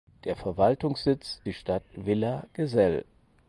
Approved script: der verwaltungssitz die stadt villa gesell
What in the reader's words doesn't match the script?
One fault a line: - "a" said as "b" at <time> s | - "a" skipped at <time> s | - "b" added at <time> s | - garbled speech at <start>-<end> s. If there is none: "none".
none